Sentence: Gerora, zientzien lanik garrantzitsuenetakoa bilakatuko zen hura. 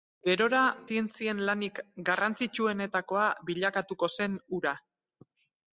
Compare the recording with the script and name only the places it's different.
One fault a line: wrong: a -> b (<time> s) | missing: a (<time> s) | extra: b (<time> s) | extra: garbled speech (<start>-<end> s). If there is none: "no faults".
no faults